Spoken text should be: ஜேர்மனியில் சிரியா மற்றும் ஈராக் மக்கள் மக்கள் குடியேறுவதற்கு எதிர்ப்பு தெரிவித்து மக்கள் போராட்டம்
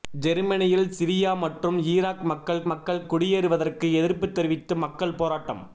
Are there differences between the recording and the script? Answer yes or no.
no